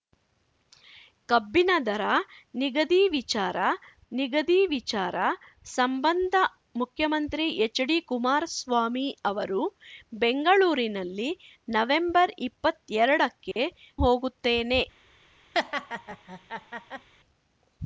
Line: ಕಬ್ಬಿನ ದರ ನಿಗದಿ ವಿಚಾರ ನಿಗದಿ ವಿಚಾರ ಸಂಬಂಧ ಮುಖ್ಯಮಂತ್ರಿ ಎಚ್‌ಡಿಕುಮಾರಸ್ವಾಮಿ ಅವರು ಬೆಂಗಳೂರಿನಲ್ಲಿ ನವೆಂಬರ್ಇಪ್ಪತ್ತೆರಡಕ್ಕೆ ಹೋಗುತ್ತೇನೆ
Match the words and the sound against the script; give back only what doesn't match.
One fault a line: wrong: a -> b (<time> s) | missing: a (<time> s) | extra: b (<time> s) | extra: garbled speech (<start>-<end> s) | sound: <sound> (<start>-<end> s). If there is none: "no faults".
sound: dropout (13.5-13.6 s)
sound: laugh (15.5-17.1 s)